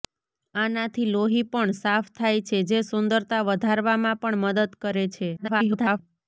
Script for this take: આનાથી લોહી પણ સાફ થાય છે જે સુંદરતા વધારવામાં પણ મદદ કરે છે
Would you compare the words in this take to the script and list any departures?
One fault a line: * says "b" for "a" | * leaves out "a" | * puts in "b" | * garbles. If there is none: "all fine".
* garbles